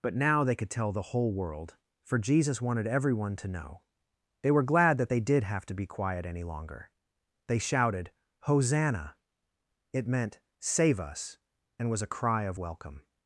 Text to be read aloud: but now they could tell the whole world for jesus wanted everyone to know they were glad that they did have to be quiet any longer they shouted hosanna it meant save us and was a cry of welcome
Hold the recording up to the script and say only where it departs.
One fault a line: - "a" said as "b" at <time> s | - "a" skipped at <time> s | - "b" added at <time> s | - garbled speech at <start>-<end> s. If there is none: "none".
none